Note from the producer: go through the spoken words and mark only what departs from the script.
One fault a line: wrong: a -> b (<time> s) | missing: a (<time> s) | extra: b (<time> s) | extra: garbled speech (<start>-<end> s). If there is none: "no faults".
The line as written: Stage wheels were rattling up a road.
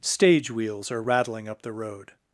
wrong: were -> are (0.9 s)
wrong: a -> the (1.6 s)